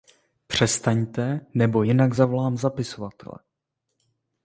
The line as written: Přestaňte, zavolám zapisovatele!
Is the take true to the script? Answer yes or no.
no